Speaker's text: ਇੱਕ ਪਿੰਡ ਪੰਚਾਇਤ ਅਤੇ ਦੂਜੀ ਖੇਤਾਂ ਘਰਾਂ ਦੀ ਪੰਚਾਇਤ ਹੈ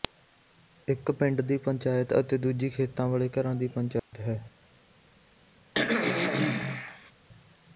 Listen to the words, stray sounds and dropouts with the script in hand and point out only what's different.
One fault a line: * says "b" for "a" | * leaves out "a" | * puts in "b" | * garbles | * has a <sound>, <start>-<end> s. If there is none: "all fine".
* puts in "ਦੀ"
* puts in "ਵਾਲੇ"
* has a dropout, 4.0-4.1 s
* has a throat clearing, 5.7-7.1 s